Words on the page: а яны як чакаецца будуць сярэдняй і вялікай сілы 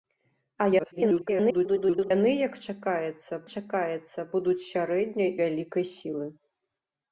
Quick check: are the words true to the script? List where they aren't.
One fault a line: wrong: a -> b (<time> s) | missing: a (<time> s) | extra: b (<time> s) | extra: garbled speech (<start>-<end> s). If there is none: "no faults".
extra: garbled speech (0.8-2.1 s)
extra: чакаецца (3.5 s)
missing: і (5.3 s)